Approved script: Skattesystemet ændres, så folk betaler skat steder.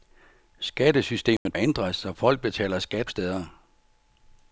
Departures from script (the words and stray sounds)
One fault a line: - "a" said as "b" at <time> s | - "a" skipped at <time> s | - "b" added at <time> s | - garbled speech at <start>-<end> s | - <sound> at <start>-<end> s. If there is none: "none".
- dropout at 1.4-1.5 s